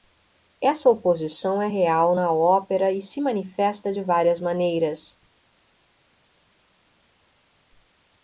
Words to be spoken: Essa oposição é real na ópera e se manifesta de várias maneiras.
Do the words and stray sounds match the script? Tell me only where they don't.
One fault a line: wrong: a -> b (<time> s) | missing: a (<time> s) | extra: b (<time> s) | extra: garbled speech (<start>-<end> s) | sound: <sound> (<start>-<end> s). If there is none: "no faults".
no faults